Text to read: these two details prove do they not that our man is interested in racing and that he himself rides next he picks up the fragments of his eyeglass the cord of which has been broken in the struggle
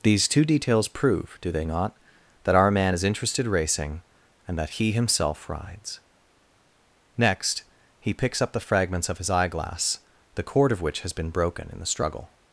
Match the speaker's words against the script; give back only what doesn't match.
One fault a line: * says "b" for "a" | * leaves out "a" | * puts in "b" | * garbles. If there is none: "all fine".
* leaves out "in"